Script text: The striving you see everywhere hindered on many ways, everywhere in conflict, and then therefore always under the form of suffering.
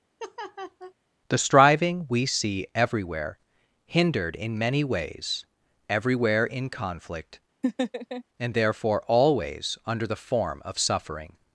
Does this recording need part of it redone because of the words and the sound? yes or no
yes